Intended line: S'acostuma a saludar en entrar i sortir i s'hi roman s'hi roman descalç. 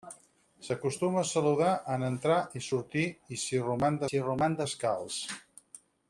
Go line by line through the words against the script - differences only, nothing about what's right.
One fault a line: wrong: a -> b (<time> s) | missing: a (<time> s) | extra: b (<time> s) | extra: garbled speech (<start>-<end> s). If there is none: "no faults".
no faults